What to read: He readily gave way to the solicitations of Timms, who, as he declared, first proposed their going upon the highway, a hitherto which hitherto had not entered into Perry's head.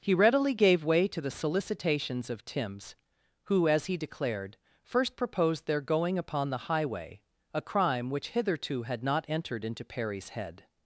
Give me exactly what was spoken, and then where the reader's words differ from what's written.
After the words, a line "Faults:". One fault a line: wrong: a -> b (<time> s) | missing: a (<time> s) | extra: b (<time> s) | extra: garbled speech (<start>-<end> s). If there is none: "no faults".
He readily gave way to the solicitations of Timms, who, as he declared, first proposed their going upon the highway, a crime which hitherto had not entered into Perry's head.
Faults:
wrong: hitherto -> crime (7.6 s)